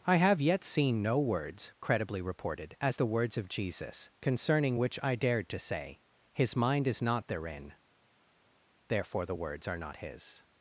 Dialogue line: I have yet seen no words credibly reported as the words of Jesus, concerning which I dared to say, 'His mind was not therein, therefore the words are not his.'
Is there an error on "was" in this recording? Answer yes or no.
yes